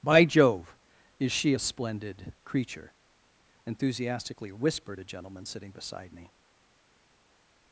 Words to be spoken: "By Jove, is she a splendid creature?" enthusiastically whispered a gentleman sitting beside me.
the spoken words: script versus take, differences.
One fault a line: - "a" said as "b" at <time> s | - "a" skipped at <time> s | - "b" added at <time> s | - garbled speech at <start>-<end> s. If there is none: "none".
none